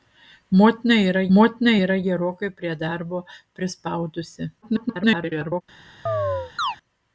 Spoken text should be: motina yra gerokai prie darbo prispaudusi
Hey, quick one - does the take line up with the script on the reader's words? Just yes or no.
no